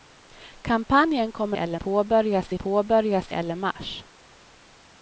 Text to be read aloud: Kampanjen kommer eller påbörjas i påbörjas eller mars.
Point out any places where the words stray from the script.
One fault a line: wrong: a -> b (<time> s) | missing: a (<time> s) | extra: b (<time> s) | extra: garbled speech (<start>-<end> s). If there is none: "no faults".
no faults